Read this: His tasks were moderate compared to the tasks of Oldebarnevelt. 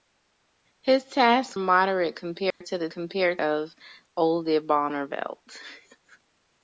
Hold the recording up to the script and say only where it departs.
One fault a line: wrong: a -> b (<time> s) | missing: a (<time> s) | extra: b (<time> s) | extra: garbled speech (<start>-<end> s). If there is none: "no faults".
missing: were (1.6 s)
wrong: tasks -> compared (2.9 s)